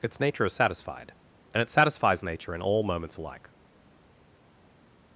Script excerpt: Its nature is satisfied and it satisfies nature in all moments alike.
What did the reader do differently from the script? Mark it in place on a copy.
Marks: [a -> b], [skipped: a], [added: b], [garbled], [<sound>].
Its nature is satisfied and it satisfies nature in all moments alike.